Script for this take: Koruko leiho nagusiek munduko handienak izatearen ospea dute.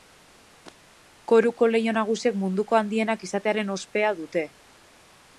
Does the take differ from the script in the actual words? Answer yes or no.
no